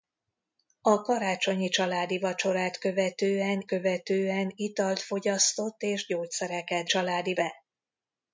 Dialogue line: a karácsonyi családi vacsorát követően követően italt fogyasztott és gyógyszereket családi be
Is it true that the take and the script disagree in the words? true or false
false